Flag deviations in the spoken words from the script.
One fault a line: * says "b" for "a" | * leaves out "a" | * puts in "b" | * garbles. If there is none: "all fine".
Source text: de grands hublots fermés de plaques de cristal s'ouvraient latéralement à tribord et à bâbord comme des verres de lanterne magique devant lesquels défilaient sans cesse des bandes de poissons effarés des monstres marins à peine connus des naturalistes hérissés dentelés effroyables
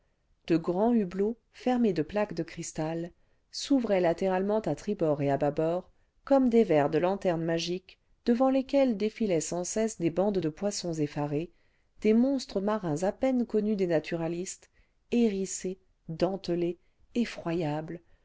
all fine